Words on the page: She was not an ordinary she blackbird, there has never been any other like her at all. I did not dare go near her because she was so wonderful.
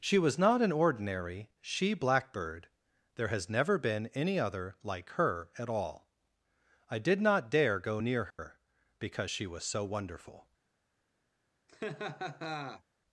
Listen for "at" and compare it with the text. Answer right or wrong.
right